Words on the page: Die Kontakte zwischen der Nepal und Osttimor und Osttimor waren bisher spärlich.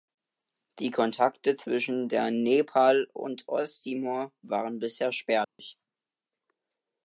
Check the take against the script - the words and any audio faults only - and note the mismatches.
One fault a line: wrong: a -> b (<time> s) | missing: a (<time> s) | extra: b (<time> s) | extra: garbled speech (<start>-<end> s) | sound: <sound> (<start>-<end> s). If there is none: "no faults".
missing: und Osttimor (4.3 s)
sound: dropout (5.4-5.6 s)